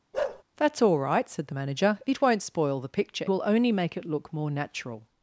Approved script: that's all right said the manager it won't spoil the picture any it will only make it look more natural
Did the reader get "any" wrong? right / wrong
wrong